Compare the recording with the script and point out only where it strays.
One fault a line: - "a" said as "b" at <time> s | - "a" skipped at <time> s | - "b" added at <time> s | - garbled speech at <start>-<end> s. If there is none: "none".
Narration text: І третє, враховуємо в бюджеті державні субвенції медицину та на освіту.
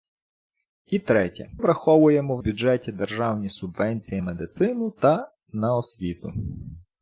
none